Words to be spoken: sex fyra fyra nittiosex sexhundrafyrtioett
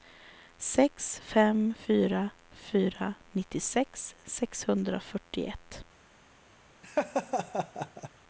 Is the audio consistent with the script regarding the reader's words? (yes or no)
no